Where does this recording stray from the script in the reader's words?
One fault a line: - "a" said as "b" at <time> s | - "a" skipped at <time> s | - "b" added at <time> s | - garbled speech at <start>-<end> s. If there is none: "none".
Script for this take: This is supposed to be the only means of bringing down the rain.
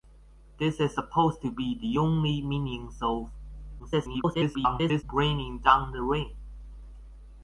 - garbled speech at 3.8-5.0 s